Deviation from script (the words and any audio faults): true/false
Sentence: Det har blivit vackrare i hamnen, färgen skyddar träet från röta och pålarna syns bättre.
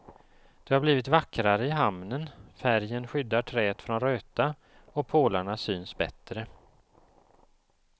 false